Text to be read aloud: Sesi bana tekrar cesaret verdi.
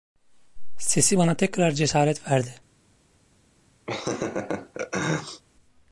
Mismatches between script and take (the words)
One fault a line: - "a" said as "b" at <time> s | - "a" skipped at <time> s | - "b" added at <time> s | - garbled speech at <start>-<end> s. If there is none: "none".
none